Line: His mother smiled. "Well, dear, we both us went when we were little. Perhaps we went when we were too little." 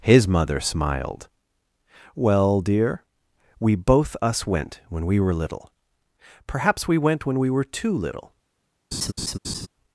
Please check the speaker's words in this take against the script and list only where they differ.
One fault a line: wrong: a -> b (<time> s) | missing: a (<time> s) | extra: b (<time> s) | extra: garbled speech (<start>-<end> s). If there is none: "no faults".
no faults